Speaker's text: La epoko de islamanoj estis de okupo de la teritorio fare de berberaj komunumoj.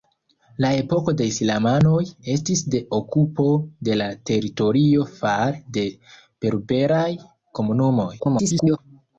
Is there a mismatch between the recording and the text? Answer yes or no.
yes